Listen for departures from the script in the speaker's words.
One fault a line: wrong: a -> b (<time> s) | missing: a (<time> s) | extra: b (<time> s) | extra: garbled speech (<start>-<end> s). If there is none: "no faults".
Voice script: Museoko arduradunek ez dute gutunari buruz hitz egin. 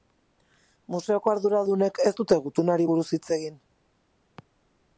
no faults